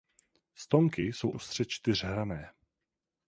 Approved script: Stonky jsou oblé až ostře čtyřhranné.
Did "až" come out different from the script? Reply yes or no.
yes